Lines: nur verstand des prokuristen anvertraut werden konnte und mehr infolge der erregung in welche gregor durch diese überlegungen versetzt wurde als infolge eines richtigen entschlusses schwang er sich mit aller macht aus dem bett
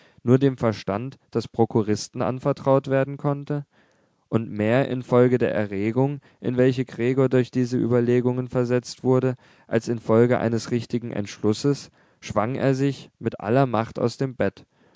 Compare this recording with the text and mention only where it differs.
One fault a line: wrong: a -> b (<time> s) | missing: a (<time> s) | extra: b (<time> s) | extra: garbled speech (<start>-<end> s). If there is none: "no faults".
extra: dem (0.4 s)